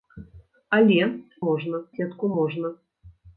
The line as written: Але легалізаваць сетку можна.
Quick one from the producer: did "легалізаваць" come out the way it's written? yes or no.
no